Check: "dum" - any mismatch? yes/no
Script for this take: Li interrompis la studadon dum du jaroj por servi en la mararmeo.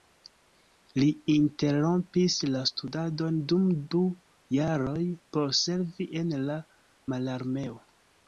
no